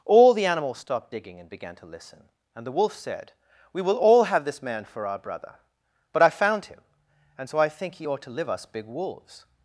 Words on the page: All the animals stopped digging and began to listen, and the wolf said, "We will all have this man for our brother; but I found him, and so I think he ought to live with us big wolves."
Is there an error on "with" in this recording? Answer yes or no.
yes